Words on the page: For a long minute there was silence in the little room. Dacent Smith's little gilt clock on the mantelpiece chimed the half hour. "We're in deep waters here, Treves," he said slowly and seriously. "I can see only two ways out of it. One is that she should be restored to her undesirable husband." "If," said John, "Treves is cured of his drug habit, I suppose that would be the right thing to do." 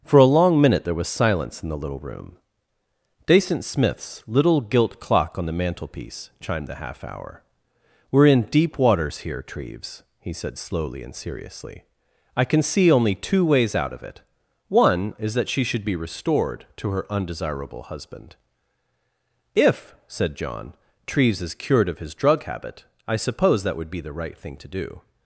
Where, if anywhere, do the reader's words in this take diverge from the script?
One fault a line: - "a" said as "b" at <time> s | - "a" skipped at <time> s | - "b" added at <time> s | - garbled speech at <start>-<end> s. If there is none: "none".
none